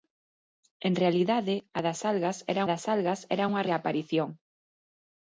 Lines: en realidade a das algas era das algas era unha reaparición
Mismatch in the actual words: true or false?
false